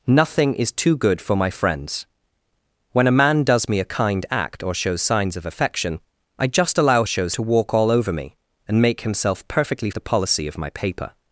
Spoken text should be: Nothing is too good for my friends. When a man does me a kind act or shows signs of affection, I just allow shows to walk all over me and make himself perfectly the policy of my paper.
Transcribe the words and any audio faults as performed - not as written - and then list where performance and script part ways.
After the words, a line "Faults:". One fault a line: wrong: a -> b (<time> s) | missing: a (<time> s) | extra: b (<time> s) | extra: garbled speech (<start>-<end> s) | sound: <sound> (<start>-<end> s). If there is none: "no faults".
Nothing is too good for my friends. When a man does me a kind act or shows signs of affection, I just allow shows to walk all over me and make himself perfectly the policy of my paper.
Faults:
no faults